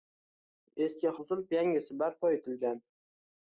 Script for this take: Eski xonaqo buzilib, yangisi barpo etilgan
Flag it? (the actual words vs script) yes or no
yes